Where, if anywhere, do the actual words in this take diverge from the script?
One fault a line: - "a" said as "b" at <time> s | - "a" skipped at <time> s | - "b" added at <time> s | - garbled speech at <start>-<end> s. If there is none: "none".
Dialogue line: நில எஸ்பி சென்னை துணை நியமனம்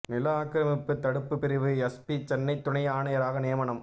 - "ஆக்கிரமிப்பு தடுப்பு பிரிவு" added at 0.3 s
- "ஆணையராக" added at 2.9 s